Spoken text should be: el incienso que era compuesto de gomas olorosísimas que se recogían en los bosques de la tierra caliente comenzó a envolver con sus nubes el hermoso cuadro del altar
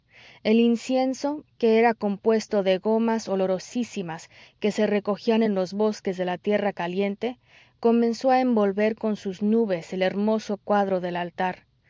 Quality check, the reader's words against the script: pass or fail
pass